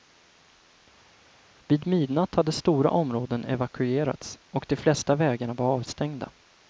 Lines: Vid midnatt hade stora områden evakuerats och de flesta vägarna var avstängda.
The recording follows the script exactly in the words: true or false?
true